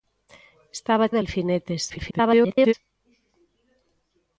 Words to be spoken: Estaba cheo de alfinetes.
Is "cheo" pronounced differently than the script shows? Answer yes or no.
yes